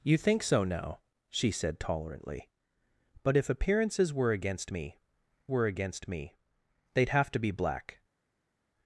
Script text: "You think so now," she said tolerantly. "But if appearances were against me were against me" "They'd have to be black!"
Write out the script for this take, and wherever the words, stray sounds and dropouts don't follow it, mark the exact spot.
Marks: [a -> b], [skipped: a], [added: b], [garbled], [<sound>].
"You think so now," she said tolerantly. "But if appearances were against me were against me" "They'd have to be black!"